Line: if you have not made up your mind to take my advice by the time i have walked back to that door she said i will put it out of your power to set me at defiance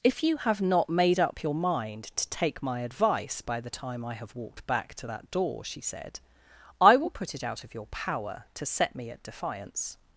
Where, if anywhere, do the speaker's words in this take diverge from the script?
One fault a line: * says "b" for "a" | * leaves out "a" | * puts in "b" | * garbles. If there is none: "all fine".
all fine